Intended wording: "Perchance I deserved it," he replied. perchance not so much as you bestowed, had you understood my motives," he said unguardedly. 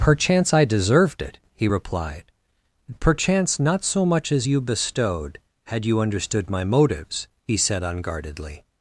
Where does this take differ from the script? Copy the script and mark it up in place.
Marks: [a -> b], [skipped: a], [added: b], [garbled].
"Perchance I deserved it," he replied. perchance not so much as you bestowed, had you understood my motives," he said unguardedly.